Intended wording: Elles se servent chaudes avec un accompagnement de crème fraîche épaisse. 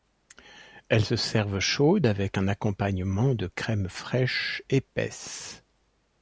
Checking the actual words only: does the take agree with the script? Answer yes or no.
yes